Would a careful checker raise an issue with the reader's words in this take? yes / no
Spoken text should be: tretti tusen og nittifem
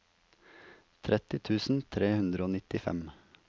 yes